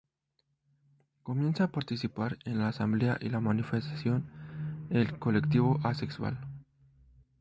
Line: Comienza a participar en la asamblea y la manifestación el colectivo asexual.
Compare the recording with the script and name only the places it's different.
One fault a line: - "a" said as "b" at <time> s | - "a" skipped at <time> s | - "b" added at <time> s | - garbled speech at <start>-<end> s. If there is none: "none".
none